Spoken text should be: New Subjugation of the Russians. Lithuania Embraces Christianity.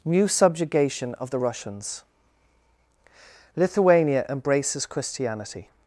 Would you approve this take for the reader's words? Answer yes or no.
yes